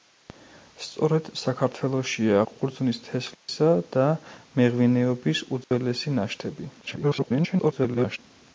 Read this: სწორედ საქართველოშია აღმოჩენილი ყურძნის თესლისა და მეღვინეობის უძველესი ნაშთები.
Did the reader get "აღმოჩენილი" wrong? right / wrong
wrong